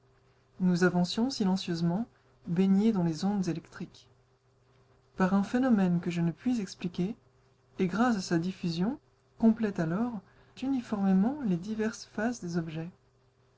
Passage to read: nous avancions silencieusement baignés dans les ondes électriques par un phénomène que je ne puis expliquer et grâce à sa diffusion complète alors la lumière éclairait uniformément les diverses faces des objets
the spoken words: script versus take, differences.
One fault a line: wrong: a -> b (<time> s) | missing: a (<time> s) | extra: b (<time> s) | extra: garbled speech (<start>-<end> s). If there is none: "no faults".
missing: la lumière éclairait (10.2 s)